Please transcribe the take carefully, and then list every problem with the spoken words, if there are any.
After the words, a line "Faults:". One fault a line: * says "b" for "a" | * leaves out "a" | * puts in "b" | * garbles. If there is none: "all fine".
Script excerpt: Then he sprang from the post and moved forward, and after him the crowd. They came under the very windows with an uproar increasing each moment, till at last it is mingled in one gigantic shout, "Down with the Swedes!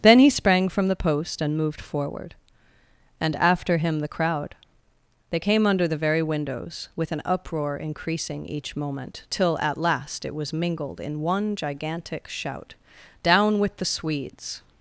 Then he sprang from the post and moved forward, and after him the crowd. They came under the very windows with an uproar increasing each moment, till at last it was mingled in one gigantic shout, "Down with the Swedes!
Faults:
* says "was" for "is"